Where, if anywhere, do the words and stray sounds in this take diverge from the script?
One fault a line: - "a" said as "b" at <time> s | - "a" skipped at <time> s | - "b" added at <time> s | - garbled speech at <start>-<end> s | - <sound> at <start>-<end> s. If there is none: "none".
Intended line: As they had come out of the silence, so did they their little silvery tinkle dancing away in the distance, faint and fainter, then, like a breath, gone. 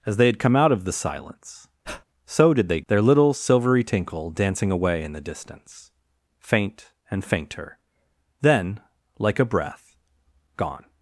- breath at 1.8-2.0 s